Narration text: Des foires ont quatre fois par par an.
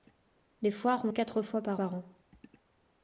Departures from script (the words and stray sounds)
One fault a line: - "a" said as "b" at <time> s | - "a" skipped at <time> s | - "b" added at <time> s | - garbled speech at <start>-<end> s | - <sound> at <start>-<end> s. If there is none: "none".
none